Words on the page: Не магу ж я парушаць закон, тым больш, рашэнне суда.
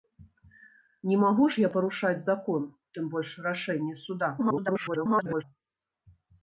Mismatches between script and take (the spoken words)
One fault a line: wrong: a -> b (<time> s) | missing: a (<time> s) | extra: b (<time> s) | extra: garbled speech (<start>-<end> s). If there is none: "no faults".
extra: garbled speech (4.4-5.4 s)